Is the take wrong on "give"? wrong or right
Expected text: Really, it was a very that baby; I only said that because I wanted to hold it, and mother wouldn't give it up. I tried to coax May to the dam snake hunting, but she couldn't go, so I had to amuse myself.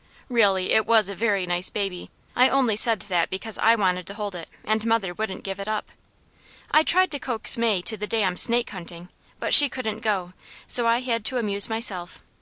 right